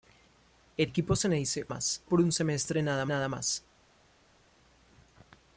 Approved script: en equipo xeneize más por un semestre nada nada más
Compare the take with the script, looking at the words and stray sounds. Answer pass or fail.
pass